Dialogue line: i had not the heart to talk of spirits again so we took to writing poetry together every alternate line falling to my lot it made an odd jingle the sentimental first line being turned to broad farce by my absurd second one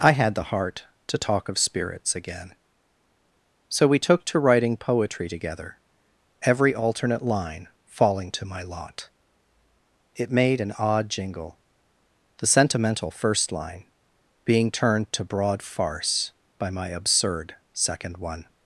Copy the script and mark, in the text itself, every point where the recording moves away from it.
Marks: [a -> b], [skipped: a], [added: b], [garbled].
i had [skipped: not] the heart to talk of spirits again so we took to writing poetry together every alternate line falling to my lot it made an odd jingle the sentimental first line being turned to broad farce by my absurd second one